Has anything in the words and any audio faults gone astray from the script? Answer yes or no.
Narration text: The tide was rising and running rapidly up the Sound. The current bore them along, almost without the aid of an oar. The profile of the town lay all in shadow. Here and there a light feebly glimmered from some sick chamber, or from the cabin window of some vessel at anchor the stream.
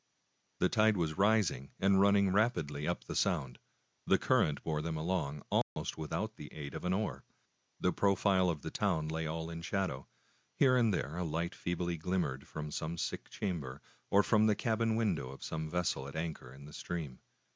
yes